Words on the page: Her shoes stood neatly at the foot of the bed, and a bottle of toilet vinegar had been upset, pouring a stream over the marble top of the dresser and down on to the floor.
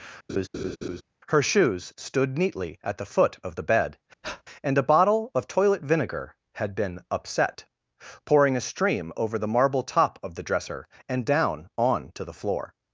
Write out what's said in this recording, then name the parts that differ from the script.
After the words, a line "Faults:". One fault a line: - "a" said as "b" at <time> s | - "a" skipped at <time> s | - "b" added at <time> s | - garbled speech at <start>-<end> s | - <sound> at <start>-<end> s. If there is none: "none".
Her shoes stood neatly at the foot of the bed, and a bottle of toilet vinegar had been upset, pouring a stream over the marble top of the dresser and down on to the floor.
Faults:
- laugh at 0.3-1.0 s
- breath at 4.2-4.4 s